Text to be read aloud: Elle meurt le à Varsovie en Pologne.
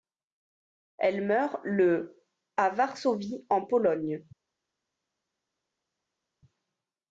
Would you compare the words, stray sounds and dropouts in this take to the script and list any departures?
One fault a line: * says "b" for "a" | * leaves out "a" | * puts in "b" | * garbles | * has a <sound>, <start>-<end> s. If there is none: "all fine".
all fine